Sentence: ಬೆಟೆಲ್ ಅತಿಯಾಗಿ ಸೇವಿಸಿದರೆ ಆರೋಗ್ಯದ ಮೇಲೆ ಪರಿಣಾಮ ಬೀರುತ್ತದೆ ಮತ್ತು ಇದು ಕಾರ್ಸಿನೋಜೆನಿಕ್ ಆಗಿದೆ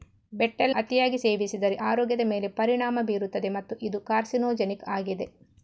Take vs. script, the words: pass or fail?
pass